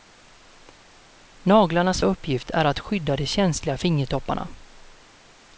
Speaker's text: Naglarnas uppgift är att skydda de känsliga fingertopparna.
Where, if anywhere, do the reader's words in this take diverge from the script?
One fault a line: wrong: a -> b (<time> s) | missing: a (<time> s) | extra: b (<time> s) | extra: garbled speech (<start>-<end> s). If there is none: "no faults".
no faults